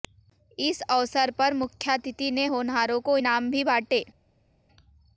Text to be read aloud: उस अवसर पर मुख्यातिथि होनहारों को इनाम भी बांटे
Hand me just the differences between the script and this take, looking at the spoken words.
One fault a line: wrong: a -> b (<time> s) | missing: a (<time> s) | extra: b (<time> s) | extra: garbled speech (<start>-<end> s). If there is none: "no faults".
wrong: उस -> इस (0.6 s)
extra: ने (2.3 s)